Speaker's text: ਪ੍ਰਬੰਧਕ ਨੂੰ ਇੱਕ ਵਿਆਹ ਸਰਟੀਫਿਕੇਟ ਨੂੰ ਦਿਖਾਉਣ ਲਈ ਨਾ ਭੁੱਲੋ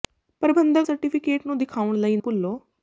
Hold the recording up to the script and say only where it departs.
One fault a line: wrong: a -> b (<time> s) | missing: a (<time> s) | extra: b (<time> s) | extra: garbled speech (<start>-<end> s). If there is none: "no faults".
missing: ਨੂੰ ਇੱਕ ਵਿਆਹ (0.9 s)
missing: ਨਾ (2.2 s)